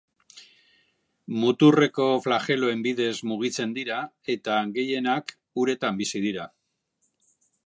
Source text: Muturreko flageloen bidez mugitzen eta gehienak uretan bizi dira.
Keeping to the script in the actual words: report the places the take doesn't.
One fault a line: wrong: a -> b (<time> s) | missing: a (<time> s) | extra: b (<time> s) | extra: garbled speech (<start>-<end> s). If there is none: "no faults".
extra: dira (3.8 s)